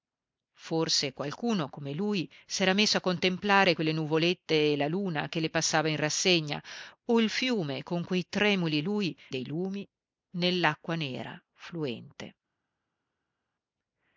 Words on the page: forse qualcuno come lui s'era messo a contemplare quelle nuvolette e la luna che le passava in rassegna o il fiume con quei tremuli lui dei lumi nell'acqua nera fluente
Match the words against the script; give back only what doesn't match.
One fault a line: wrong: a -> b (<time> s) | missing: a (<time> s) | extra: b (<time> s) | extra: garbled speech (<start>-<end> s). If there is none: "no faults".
no faults